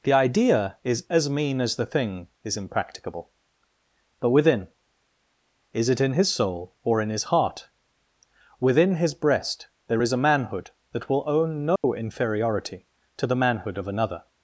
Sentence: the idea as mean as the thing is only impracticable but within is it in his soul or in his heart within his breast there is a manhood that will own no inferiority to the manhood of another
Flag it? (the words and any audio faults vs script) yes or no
yes